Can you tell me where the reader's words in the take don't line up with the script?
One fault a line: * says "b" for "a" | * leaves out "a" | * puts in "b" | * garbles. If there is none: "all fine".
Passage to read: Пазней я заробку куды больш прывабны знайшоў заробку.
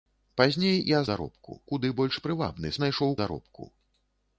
all fine